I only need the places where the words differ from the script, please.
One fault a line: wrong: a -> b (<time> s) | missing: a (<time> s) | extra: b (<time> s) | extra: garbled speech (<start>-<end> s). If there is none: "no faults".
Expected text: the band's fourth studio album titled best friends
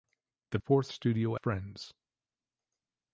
missing: band's (0.6 s)
missing: album titled best (1.4 s)